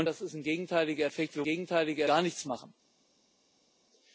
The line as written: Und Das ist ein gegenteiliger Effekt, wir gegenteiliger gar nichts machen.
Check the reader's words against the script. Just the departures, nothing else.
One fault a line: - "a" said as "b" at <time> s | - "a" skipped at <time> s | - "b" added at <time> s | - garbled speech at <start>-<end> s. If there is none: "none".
none